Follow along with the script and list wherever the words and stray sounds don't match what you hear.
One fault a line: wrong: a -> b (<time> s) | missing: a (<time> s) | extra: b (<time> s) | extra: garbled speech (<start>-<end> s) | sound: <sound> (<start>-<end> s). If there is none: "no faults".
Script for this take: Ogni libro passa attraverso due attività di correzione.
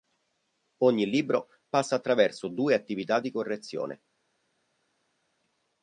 no faults